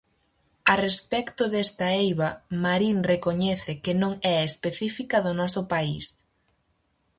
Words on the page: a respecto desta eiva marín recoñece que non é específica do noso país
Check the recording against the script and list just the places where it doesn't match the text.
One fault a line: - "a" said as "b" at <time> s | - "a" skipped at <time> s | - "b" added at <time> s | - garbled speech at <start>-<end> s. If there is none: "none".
none